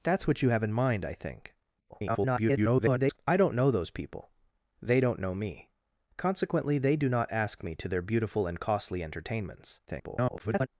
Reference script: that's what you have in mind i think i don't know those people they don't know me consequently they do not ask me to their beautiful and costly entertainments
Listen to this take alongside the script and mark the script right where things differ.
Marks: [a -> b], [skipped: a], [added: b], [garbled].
that's what you have in mind i think [garbled] i don't know those people they don't know me consequently they do not ask me to their beautiful and costly entertainments [garbled]